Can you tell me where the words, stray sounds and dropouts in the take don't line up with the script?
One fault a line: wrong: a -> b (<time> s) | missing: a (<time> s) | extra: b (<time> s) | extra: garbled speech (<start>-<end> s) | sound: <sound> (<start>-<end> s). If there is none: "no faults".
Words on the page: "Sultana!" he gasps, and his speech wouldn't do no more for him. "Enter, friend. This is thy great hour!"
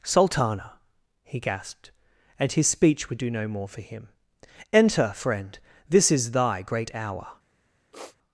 wrong: gasps -> gasped (1.4 s)
wrong: wouldn't -> would (3.1 s)
sound: sniff (7.9-8.2 s)